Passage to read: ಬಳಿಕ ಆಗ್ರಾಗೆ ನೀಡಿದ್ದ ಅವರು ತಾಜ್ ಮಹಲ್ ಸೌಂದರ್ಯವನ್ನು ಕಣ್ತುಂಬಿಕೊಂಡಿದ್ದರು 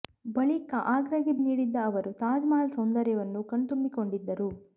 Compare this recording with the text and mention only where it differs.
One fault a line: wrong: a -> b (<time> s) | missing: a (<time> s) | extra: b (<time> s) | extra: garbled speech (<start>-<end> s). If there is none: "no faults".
no faults